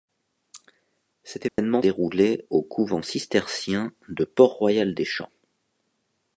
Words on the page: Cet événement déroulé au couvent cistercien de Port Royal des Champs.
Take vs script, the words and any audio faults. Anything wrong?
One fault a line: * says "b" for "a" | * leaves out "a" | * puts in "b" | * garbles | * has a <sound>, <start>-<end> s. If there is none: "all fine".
* has a dropout, 1.5-1.6 s